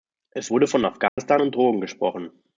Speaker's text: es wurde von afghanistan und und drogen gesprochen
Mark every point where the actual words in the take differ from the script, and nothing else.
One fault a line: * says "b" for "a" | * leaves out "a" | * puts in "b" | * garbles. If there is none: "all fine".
* leaves out "und"